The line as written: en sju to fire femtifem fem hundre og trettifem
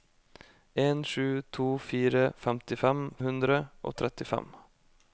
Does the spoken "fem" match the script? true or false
false